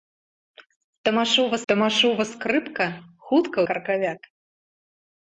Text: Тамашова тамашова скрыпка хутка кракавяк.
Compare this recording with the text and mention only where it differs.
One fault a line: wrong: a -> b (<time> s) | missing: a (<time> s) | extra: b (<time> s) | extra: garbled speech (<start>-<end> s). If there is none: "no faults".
no faults